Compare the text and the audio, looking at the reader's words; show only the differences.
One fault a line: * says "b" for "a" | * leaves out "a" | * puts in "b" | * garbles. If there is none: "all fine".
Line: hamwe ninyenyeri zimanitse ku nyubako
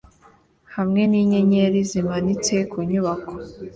all fine